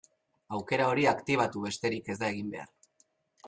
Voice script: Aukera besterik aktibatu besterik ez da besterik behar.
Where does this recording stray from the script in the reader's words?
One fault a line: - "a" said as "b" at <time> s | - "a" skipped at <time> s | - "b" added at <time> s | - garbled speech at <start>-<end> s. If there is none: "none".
- "besterik" said as "hori" at 0.9 s
- "besterik" said as "egin" at 2.4 s